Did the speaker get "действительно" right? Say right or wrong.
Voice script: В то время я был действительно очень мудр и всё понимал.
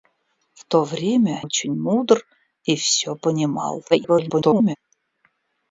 wrong